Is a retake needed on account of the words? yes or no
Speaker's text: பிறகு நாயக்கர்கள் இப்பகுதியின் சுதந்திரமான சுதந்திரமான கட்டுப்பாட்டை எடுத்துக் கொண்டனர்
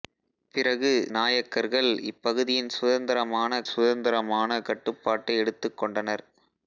no